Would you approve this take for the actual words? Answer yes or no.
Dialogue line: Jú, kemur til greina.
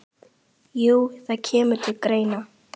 no